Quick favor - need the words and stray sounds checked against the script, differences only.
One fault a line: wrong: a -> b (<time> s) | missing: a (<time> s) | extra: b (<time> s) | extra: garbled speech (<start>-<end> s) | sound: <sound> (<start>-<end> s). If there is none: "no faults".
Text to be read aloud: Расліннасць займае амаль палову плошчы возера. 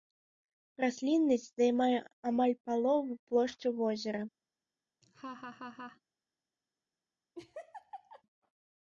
sound: laugh (5.0-6.0 s)
sound: laugh (7.3-8.2 s)